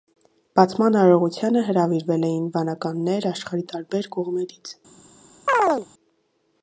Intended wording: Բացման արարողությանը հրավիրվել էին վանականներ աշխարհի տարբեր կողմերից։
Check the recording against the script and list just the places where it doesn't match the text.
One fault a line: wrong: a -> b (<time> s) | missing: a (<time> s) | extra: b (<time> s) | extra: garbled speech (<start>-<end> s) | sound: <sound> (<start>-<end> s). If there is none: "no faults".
sound: chirp (5.5-5.9 s)